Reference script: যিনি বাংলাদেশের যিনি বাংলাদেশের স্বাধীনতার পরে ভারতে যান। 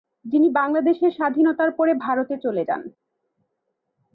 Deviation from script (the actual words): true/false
true